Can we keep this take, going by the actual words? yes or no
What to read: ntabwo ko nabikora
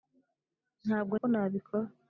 yes